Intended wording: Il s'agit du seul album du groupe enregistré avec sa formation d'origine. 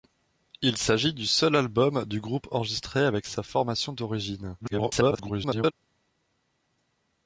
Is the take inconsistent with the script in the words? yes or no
yes